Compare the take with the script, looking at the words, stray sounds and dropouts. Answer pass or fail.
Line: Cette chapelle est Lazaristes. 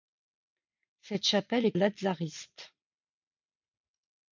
pass